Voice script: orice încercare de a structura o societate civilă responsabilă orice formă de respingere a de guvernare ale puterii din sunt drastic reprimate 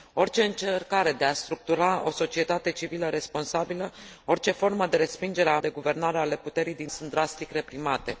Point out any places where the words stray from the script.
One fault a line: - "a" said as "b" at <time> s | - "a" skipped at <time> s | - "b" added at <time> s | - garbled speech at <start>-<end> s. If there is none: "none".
none